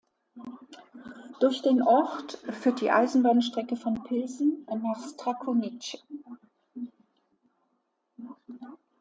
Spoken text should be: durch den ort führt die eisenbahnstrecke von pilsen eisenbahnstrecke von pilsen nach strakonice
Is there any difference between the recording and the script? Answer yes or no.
yes